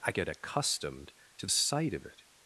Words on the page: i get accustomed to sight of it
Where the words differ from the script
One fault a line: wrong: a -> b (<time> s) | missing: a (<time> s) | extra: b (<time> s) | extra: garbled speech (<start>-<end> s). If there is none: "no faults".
no faults